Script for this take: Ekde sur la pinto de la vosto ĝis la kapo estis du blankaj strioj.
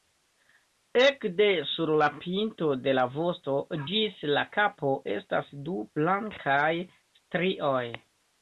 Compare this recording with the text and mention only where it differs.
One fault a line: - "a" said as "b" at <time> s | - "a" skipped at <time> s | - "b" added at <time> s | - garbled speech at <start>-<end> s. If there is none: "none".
- "estis" said as "estas" at 5.2 s